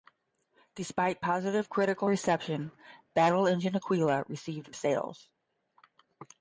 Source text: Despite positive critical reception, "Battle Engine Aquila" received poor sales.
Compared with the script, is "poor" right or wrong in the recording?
wrong